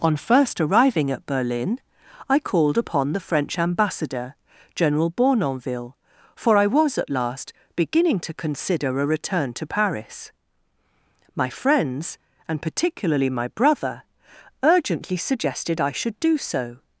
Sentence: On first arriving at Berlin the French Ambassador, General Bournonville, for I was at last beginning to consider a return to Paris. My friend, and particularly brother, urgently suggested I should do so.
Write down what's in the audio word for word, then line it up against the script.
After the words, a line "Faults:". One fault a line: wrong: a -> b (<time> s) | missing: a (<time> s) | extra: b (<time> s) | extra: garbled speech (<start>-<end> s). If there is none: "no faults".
On first arriving at Berlin I called upon the French Ambassador, General Bournonville, for I was at last beginning to consider a return to Paris. My friends, and particularly my brother, urgently suggested I should do so.
Faults:
extra: I called upon (2.3 s)
wrong: friend -> friends (11.5 s)
extra: my (13.3 s)